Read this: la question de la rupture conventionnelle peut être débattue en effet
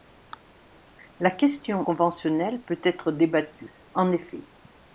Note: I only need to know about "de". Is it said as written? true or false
false